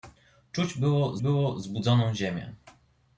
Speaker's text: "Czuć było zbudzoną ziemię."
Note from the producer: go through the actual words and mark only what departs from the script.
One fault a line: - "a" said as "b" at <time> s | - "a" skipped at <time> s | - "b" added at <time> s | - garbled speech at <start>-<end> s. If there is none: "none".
- "było" added at 1.2 s